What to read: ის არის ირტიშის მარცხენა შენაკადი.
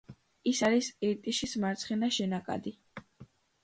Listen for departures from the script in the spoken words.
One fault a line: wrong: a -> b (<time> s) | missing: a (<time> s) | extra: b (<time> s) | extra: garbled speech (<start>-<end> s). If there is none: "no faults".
no faults